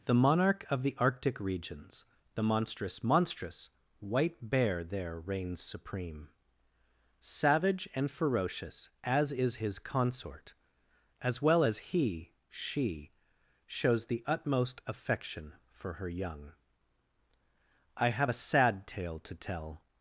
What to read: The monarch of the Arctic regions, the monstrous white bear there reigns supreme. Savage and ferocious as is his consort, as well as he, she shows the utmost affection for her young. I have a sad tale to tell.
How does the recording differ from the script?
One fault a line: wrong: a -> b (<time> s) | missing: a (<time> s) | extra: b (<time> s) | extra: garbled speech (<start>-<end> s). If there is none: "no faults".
extra: monstrous (3.0 s)